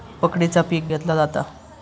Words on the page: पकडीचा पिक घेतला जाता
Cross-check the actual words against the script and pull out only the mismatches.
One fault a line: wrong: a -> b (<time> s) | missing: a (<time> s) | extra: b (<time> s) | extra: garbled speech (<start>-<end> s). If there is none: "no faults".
no faults